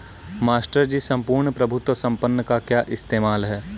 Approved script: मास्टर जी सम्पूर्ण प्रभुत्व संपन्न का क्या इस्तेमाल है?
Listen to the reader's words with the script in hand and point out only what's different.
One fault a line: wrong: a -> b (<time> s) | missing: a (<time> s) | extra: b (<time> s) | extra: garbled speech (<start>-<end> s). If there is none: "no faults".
no faults